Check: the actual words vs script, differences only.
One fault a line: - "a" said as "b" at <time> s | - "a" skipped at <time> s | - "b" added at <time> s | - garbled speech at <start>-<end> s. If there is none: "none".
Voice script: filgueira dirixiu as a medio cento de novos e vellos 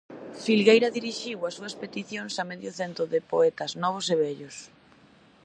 - "súas peticións" added at 1.6 s
- "poetas" added at 3.3 s